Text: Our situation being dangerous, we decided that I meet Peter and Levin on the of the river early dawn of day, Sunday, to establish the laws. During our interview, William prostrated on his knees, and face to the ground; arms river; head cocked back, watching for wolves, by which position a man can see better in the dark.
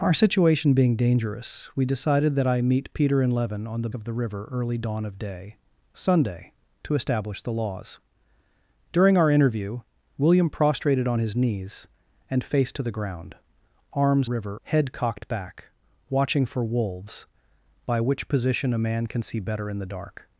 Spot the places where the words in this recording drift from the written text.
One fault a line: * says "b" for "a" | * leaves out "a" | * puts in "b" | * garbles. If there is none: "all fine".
all fine